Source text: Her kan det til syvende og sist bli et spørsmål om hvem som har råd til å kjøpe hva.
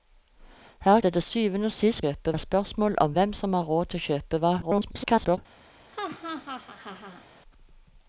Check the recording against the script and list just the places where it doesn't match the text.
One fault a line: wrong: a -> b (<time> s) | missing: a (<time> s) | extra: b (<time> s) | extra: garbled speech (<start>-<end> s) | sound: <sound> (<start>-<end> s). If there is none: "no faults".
missing: kan (1.0 s)
wrong: bli -> kjøpe (2.0 s)
extra: garbled speech (4.6-5.4 s)
sound: laugh (5.9-7.3 s)